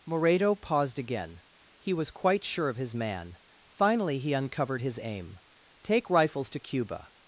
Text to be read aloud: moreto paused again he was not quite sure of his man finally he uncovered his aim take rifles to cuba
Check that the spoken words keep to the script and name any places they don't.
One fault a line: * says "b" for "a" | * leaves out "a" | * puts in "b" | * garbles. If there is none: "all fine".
* leaves out "not"